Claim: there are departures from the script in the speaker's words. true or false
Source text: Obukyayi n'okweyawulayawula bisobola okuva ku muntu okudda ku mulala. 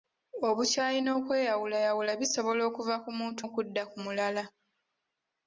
false